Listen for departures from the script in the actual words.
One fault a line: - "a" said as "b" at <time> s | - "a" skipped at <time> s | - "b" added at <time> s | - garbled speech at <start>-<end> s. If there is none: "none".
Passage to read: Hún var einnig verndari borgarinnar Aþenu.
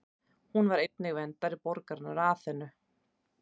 none